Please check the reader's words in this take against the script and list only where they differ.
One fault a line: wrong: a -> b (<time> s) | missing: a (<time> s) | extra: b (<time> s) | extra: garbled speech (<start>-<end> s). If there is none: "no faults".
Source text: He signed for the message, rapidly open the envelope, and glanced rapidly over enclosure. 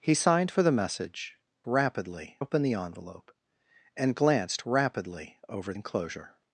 no faults